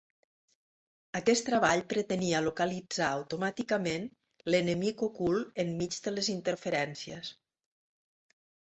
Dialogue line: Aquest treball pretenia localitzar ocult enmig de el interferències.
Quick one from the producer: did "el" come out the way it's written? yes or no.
no